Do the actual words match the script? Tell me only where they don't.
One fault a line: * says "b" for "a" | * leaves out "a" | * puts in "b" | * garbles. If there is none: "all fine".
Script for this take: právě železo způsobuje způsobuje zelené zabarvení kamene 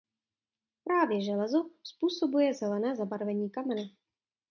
* leaves out "způsobuje"